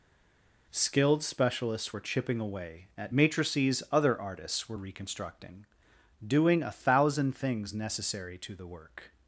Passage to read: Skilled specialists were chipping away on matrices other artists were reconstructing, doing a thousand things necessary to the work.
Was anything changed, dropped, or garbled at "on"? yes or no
yes